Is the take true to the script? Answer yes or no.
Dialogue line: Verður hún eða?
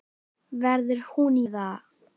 yes